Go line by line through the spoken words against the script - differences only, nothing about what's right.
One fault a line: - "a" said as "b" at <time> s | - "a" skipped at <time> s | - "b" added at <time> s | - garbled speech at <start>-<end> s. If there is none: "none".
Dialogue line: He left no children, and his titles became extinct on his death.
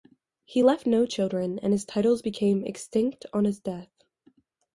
none